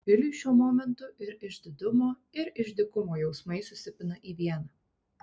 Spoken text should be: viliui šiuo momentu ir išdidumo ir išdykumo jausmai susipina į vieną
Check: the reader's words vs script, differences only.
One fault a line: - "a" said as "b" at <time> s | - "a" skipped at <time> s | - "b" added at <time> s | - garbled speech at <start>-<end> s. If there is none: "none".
none